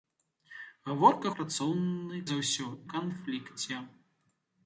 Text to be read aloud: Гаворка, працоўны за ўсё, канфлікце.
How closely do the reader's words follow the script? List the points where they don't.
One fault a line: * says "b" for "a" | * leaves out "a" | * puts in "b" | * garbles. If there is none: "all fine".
all fine